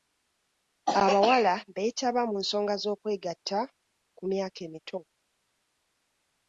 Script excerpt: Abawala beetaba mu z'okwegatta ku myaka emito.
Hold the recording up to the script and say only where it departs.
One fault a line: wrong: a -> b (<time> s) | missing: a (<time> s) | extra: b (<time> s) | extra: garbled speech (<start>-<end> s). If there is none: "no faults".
extra: nsonga (2.4 s)